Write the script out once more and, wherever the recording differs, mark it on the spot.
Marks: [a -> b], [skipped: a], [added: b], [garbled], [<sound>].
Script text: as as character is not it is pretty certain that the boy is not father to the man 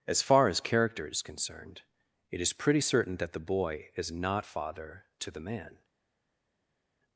as [added: far] as character is [not -> concerned] it is pretty certain that the boy is not father to the man